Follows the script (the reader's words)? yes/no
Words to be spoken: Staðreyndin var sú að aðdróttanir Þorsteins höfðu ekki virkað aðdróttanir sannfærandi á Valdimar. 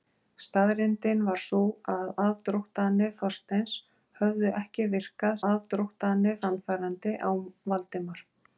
yes